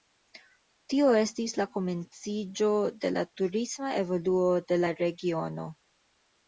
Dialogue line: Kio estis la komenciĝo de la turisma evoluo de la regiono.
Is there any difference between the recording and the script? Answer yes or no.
yes